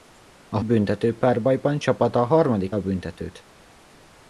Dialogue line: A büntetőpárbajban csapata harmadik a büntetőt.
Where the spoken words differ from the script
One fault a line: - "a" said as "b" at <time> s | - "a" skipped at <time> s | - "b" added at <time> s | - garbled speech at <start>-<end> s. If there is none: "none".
none